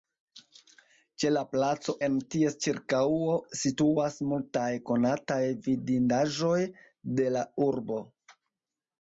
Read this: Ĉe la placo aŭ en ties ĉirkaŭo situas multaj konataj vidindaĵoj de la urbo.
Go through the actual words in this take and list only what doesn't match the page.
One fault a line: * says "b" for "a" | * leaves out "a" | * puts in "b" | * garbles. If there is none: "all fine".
* leaves out "aŭ"